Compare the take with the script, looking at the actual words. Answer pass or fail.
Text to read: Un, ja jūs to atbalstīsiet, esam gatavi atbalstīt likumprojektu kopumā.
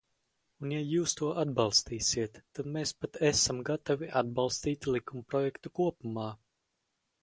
fail